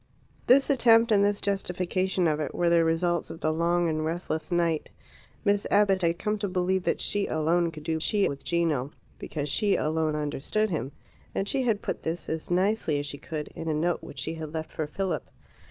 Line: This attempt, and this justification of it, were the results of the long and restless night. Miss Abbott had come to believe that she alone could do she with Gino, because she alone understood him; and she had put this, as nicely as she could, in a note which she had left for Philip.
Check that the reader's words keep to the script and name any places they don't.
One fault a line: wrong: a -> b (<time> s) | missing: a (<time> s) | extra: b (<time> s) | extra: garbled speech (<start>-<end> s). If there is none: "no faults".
no faults